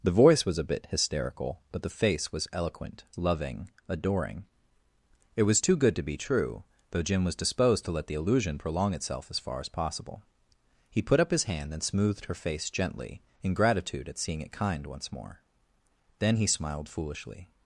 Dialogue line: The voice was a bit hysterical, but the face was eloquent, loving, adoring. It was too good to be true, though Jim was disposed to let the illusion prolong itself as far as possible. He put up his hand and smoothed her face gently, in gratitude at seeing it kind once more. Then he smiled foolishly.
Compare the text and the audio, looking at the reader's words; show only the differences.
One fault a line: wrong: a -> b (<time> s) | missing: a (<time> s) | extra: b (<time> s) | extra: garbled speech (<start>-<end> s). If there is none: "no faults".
no faults